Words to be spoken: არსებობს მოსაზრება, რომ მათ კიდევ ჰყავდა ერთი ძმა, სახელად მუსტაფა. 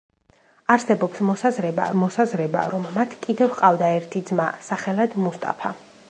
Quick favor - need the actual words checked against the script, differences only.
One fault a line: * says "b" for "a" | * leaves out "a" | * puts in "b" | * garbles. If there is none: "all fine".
* puts in "მოსაზრება"